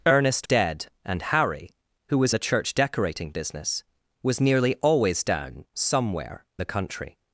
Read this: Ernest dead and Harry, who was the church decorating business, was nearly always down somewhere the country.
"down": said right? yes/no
yes